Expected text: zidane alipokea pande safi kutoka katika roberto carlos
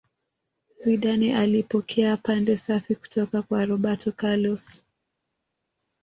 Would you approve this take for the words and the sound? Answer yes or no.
no